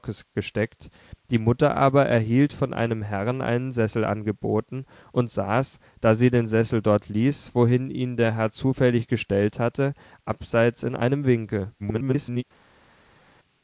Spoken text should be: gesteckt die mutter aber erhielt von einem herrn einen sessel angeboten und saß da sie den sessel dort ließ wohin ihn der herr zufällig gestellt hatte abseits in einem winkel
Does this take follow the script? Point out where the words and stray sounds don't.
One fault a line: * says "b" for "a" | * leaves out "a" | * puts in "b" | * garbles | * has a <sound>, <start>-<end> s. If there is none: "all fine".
* garbles